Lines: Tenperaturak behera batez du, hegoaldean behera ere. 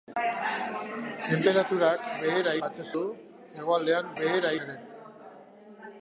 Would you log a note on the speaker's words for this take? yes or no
no